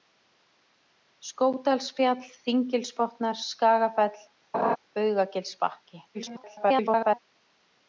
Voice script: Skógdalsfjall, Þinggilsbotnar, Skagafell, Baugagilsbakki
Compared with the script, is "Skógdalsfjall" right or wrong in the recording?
right